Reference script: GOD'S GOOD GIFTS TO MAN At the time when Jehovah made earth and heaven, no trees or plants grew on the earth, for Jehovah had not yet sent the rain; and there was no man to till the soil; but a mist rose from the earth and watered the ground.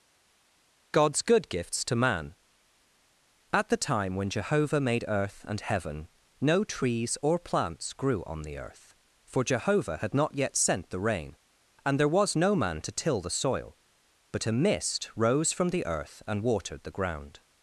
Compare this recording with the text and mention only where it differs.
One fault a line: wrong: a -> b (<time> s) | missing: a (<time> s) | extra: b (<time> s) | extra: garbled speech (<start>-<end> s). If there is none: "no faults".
no faults